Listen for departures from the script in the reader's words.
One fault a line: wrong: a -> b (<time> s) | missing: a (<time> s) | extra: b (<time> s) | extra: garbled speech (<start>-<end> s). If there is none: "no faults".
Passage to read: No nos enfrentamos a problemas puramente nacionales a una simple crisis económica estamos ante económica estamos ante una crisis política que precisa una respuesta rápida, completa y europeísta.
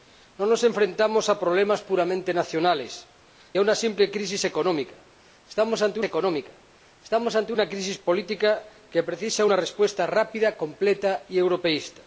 no faults